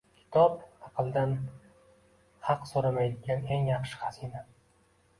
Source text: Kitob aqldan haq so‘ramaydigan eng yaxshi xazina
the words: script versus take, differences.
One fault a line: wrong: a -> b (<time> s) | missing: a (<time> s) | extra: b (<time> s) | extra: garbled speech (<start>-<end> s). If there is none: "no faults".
no faults